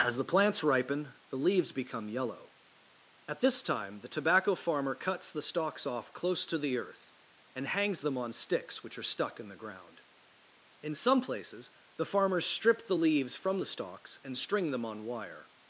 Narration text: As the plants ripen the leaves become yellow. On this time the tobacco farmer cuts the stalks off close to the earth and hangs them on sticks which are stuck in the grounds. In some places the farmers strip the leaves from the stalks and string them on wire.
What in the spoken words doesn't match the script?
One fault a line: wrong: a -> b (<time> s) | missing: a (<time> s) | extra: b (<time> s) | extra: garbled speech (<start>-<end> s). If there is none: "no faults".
wrong: On -> At (3.3 s)
wrong: grounds -> ground (9.6 s)